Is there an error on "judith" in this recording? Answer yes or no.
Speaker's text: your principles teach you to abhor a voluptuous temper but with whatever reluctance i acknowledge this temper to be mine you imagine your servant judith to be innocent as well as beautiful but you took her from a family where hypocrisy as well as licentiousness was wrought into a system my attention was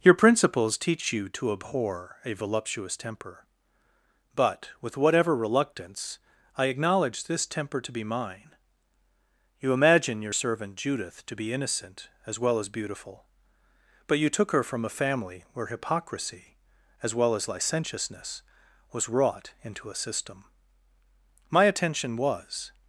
no